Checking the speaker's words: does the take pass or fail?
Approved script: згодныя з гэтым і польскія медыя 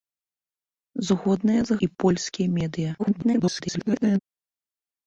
fail